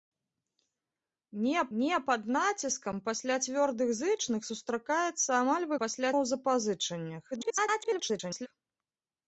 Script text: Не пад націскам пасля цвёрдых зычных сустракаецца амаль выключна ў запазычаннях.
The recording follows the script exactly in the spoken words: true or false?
false